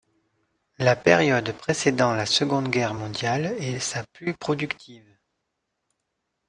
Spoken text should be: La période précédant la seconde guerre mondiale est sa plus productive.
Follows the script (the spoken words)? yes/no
yes